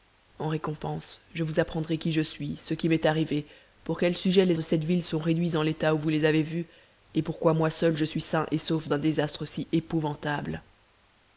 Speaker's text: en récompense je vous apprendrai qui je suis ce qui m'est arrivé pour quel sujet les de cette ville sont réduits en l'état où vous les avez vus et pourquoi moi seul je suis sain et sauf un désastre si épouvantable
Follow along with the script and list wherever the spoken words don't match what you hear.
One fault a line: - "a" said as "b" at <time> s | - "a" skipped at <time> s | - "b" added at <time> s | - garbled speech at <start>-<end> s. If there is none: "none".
none